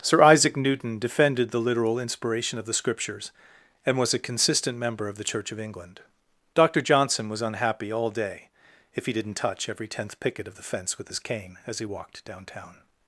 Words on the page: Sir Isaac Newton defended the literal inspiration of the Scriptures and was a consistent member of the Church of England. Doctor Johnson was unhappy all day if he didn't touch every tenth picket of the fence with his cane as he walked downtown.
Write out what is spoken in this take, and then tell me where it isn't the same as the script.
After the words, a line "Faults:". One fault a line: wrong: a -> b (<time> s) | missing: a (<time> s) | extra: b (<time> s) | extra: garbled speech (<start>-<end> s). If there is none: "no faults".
Sir Isaac Newton defended the literal inspiration of the Scriptures and was a consistent member of the Church of England. Doctor Johnson was unhappy all day if he didn't touch every tenth picket of the fence with his cane as he walked downtown.
Faults:
no faults